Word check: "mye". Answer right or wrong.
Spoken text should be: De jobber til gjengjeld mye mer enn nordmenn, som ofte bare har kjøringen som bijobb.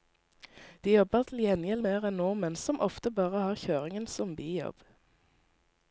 wrong